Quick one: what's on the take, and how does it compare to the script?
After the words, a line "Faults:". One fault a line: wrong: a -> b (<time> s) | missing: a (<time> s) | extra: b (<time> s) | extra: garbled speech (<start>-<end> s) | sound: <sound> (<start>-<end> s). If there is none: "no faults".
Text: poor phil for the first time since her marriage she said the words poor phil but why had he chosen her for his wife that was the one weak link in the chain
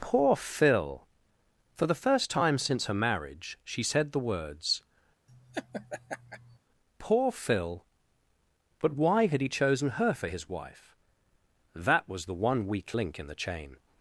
poor phil for the first time since her marriage she said the words poor phil but why had he chosen her for his wife that was the one weak link in the chain
Faults:
sound: laugh (5.3-6.6 s)